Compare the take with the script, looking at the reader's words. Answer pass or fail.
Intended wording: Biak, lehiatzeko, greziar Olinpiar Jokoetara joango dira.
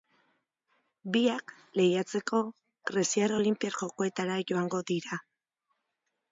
pass